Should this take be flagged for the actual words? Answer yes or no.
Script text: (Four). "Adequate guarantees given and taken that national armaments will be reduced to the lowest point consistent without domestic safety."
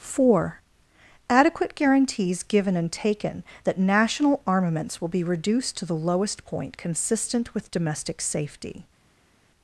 yes